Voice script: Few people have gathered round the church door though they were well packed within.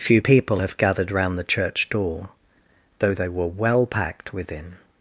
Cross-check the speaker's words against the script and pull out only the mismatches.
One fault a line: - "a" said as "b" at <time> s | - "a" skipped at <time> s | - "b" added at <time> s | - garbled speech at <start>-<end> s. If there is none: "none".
none